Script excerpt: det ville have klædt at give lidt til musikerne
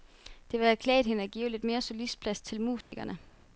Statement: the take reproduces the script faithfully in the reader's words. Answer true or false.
false